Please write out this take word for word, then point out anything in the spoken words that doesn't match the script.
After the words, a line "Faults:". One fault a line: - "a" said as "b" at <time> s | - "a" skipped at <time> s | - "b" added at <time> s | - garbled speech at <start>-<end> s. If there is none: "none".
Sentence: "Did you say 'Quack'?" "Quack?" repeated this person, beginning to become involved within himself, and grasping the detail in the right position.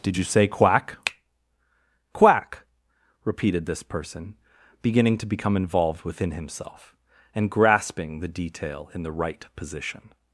"Did you say 'Quack'?" "Quack?" repeated this person, beginning to become involved within himself, and grasping the detail in the right position.
Faults:
none